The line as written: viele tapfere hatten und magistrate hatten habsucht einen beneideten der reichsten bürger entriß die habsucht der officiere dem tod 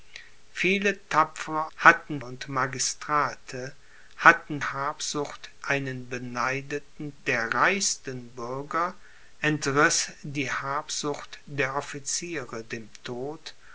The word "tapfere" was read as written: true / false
true